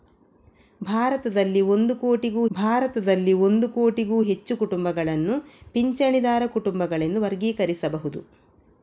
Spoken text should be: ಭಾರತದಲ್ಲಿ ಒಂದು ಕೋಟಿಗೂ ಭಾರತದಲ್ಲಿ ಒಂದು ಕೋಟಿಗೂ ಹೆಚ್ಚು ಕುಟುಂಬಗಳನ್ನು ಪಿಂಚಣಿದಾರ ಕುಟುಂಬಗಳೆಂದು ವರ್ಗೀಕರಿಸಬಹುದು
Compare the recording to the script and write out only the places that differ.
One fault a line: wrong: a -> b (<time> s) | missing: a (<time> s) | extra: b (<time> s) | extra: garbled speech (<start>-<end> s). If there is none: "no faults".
no faults